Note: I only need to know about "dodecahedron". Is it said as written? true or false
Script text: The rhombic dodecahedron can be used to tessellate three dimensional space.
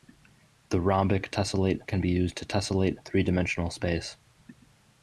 false